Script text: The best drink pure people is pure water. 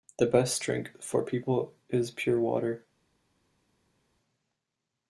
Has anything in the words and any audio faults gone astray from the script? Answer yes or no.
yes